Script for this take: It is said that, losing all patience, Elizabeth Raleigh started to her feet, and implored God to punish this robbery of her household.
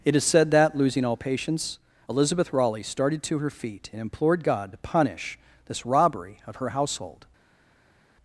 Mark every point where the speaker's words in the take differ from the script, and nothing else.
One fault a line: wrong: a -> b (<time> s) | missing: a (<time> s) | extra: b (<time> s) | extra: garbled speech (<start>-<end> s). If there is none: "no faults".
no faults